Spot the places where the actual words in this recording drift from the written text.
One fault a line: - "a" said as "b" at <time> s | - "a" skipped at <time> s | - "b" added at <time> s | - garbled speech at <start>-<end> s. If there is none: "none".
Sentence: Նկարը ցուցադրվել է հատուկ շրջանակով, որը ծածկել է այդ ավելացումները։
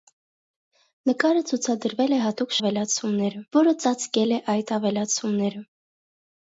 - "շրջանակով" said as "ավելացումները" at 2.6 s